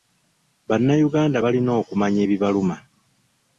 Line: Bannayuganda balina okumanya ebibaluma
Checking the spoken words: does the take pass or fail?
pass